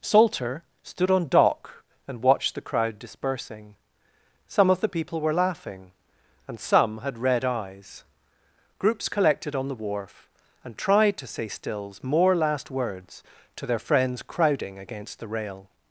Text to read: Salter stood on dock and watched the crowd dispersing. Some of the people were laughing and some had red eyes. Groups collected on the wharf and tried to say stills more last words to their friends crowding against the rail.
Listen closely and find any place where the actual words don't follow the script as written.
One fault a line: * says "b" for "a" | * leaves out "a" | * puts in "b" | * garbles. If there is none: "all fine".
all fine